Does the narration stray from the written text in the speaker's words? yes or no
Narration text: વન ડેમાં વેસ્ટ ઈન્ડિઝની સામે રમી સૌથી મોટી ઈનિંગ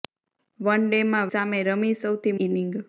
yes